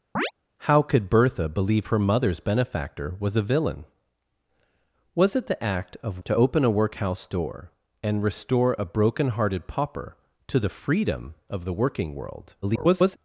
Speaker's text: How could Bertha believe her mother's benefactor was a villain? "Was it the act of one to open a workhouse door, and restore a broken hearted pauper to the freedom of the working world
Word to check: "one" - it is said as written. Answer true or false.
false